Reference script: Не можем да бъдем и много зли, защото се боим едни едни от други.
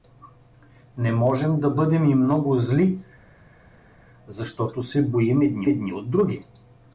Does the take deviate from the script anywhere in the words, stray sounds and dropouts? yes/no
no